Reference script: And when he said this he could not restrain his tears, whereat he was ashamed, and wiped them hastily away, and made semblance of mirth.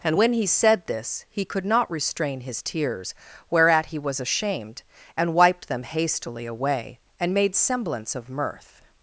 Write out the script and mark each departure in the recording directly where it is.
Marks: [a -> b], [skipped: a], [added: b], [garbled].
And when he said this he could not restrain his tears, whereat he was ashamed, and wiped them hastily away, and made semblance of mirth.